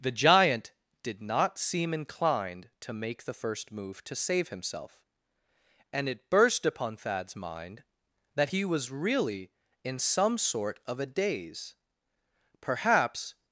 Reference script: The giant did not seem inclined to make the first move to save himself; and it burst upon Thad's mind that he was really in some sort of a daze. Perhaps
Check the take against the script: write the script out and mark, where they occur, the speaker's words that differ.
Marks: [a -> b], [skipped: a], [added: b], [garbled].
The giant did not seem inclined to make the first move to save himself; and it burst upon Thad's mind that he was really in some sort of a daze. Perhaps